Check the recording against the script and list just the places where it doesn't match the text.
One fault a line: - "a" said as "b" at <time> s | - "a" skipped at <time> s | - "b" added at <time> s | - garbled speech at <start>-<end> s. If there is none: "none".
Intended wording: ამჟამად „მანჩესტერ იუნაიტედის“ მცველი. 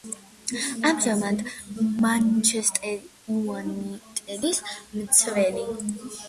none